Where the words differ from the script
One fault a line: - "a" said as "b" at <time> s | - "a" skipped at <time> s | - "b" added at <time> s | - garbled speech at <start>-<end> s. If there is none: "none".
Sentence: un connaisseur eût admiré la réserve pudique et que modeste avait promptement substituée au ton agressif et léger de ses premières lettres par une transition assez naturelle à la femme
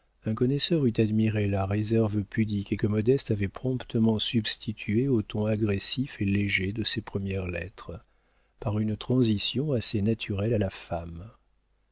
none